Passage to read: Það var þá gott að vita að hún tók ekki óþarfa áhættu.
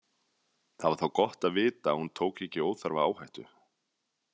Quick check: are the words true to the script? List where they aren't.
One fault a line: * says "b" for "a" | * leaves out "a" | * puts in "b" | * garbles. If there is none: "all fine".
all fine